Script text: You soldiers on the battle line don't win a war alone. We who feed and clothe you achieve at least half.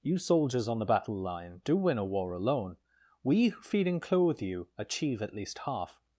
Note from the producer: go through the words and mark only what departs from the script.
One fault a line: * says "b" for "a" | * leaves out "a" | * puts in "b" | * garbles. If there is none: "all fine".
* says "do" for "don't"